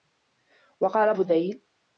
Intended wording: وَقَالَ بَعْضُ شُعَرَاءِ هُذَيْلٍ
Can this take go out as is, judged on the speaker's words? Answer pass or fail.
fail